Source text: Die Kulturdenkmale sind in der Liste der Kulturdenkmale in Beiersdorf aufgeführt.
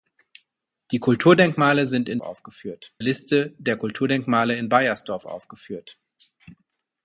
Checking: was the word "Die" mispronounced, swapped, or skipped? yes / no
no